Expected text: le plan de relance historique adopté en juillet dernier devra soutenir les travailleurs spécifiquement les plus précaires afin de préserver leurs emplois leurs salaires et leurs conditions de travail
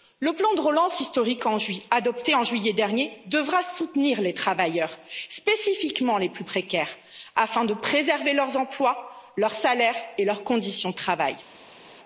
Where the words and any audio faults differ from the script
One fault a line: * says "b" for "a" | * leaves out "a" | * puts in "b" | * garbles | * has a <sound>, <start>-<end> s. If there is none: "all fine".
all fine